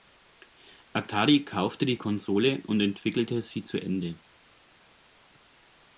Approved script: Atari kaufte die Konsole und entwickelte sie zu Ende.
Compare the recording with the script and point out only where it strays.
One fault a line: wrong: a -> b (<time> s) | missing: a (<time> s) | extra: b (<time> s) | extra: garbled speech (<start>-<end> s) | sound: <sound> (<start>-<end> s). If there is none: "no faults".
no faults